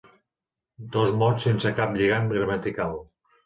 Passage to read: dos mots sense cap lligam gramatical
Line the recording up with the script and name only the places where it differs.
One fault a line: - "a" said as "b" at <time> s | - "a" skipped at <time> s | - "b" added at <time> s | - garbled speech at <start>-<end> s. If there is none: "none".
none